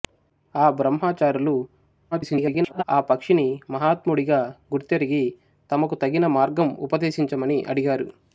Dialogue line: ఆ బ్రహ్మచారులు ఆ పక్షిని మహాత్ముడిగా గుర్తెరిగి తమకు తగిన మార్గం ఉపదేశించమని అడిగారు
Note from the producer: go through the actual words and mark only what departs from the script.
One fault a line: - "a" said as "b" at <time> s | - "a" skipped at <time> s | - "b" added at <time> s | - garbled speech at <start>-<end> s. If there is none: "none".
- garbled speech at 2.1-2.8 s